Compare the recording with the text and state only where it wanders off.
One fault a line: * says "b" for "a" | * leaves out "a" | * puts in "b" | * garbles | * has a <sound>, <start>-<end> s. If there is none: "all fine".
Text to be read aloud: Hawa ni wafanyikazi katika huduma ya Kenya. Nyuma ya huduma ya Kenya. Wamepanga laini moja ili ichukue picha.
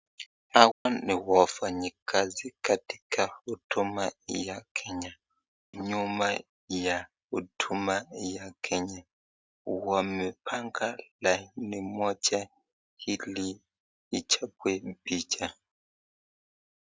* has a dropout, 0.7-0.9 s